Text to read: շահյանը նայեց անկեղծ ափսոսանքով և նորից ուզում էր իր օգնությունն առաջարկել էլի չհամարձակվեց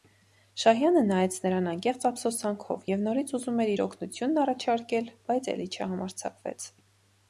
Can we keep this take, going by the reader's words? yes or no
no